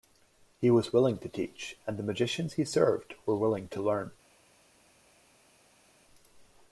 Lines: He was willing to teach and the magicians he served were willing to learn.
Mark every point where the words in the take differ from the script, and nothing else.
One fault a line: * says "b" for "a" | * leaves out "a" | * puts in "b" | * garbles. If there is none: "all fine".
all fine